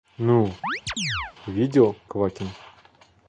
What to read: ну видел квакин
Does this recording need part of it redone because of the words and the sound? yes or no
yes